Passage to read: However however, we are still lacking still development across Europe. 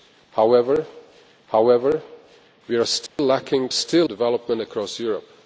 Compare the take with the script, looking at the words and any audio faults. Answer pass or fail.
fail